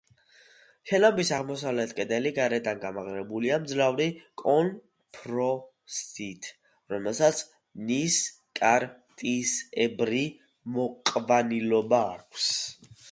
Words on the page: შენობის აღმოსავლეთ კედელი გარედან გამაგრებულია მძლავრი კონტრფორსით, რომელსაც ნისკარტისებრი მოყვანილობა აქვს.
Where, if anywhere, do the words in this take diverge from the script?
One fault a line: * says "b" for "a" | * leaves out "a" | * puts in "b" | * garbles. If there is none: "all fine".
all fine